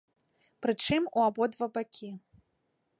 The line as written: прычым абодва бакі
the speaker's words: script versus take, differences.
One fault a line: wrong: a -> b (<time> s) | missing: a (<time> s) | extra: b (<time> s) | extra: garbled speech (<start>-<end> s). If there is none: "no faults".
extra: у (1.2 s)